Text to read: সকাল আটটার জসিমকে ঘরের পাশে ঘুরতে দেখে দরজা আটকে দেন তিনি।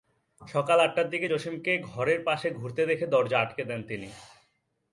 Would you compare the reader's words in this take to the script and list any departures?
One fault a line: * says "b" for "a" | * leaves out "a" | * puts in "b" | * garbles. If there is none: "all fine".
* puts in "দিকে"